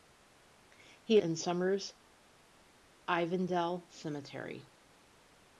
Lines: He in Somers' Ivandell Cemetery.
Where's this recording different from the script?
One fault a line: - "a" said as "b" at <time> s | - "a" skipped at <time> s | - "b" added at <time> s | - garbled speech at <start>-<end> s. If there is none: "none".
none